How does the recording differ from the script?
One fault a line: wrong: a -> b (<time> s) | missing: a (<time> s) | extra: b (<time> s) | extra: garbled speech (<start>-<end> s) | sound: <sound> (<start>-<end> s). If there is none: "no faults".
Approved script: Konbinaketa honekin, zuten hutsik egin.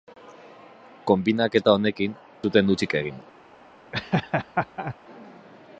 sound: laugh (3.9-4.9 s)